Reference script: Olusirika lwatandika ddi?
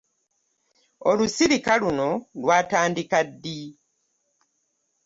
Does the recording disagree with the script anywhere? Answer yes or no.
yes